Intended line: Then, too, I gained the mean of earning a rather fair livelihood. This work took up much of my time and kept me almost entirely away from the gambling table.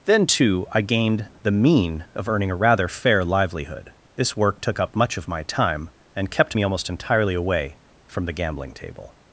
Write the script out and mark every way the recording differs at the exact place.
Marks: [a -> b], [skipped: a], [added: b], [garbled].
Then, too, I gained the mean of earning a rather fair livelihood. This work took up much of my time and kept me almost entirely away from the gambling table.